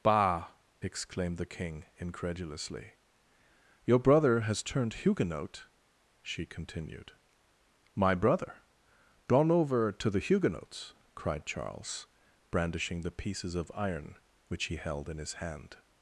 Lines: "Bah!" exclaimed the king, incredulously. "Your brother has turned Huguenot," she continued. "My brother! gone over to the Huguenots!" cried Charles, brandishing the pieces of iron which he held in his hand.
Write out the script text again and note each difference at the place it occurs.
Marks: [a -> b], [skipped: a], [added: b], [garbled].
"Bah!" exclaimed the king, incredulously. "Your brother has turned Huguenot," she continued. "My brother! gone over to the Huguenots!" cried Charles, brandishing the pieces of iron which he held in his hand.